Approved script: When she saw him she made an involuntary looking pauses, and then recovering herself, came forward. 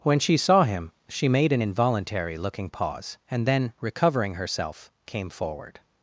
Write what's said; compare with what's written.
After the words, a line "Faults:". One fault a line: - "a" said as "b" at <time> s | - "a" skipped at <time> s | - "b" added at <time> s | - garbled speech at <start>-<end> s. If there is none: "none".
When she saw him she made an involuntary looking pause, and then recovering herself, came forward.
Faults:
- "pauses" said as "pause" at 2.7 s